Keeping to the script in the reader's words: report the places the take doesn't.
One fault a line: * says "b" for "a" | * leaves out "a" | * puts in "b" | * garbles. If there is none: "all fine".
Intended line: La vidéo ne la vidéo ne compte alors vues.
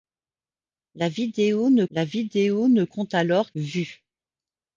all fine